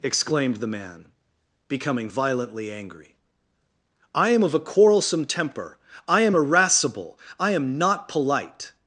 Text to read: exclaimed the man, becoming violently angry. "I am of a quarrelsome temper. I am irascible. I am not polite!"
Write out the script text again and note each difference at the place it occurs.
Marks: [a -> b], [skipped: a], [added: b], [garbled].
exclaimed the man, becoming violently angry. "I am of a quarrelsome temper. I am irascible. I am not polite!"